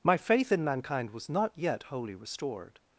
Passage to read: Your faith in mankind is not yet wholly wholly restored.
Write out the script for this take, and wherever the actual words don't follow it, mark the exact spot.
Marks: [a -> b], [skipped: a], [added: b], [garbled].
[Your -> My] faith in mankind [is -> was] not yet wholly [skipped: wholly] restored.